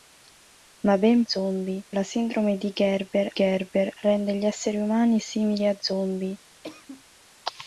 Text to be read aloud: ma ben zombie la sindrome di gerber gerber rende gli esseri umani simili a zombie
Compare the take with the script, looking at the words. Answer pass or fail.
pass